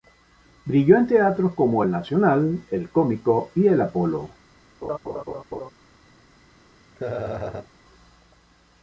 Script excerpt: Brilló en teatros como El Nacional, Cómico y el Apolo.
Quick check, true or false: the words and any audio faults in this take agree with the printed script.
false